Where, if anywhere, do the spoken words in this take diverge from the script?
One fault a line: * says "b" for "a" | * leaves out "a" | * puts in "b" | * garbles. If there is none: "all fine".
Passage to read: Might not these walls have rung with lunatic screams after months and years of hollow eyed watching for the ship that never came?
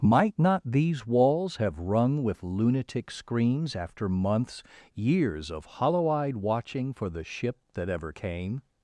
* leaves out "and"
* says "ever" for "never"